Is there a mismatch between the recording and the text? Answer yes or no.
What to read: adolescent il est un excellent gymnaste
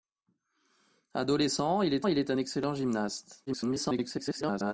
yes